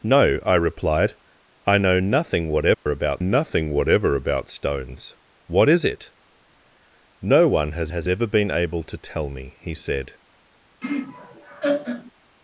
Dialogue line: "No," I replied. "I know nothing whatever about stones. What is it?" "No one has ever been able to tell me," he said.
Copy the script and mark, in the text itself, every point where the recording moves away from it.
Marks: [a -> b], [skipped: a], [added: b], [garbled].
"No," I replied. "I know nothing whatever about [added: nothing whatever about] stones. What is it?" "No one has [added: has] ever been able to tell me," he said.